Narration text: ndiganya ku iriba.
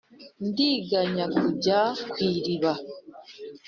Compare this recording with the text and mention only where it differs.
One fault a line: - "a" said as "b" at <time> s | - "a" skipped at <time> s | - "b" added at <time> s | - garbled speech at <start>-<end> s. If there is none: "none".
- "kujya" added at 1.3 s